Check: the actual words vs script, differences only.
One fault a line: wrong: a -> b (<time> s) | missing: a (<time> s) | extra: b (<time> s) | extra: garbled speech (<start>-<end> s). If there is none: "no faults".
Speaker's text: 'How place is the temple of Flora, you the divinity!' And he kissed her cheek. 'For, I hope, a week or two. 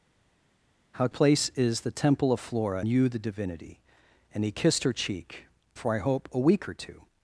no faults